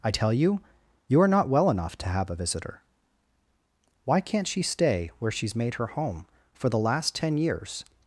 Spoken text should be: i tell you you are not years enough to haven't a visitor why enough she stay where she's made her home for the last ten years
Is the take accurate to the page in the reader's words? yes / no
no